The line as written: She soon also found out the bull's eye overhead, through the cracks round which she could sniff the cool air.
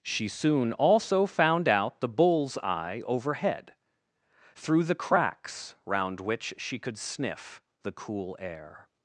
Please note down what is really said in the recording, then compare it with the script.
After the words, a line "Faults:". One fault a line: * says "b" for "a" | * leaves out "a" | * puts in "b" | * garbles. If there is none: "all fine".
She soon also found out the bull's eye overhead, through the cracks round which she could sniff the cool air.
Faults:
all fine